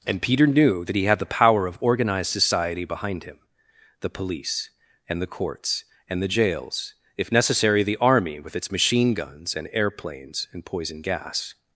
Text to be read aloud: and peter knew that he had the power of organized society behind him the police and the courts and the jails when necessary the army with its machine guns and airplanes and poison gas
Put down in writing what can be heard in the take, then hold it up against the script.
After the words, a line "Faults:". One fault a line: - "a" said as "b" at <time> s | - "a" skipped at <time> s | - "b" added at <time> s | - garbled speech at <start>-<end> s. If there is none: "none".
and peter knew that he had the power of organized society behind him the police and the courts and the jails if necessary the army with its machine guns and airplanes and poison gas
Faults:
- "when" said as "if" at 7.2 s